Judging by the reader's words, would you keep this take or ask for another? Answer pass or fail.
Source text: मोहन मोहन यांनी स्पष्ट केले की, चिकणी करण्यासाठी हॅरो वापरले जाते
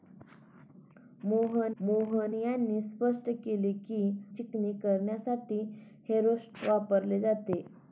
pass